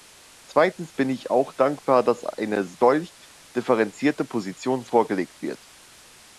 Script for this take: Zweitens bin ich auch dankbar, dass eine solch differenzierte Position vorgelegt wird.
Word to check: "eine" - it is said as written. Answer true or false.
true